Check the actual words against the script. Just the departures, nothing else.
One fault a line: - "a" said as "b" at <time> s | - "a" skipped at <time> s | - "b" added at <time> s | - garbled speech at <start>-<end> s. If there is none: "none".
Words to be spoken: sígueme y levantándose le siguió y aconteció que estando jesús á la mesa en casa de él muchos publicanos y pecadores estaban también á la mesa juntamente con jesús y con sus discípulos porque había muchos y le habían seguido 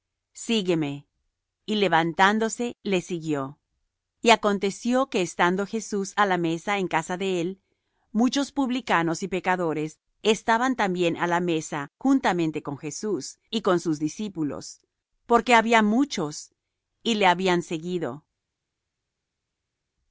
none